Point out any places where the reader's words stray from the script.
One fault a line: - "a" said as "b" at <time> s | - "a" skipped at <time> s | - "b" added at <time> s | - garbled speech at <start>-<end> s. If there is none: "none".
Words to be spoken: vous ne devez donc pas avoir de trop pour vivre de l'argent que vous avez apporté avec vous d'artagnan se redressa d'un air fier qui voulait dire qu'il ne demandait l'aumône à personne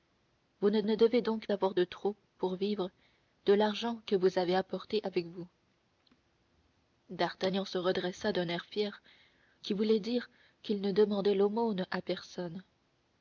- "ne" added at 0.9 s
- "pas" skipped at 1.5 s